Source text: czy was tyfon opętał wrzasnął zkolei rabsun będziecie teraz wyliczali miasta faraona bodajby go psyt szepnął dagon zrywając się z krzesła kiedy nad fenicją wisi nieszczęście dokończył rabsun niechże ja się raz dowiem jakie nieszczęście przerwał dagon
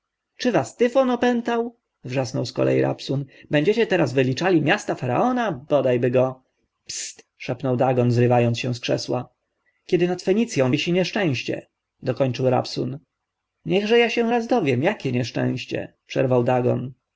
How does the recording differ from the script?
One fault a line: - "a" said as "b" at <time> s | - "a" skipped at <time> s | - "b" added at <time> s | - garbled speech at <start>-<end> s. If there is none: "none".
none